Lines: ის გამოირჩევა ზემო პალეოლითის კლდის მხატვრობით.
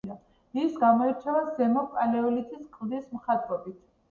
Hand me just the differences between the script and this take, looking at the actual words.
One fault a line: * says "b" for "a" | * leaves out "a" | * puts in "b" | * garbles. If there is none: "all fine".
all fine